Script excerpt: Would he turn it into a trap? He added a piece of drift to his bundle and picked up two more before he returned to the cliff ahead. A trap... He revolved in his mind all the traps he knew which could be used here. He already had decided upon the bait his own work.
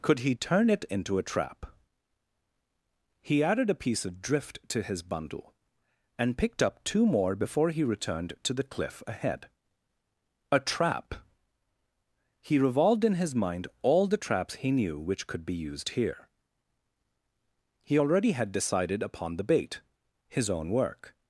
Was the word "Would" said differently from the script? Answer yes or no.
yes